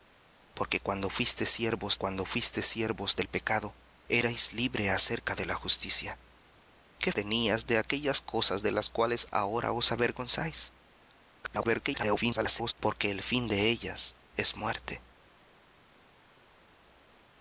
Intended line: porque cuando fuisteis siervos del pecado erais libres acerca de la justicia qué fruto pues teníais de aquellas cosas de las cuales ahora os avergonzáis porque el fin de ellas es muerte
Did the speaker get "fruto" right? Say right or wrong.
wrong